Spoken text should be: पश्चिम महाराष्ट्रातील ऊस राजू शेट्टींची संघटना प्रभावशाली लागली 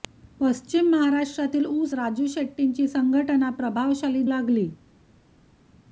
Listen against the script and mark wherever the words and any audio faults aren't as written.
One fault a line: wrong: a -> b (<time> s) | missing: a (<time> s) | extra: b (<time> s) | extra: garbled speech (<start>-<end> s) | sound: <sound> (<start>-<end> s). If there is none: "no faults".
no faults